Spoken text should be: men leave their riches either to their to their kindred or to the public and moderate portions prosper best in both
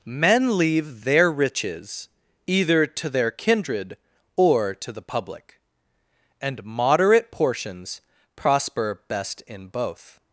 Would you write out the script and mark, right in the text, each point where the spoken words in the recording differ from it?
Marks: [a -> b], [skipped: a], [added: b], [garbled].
men leave their riches either to their [skipped: to their] kindred or to the public and moderate portions prosper best in both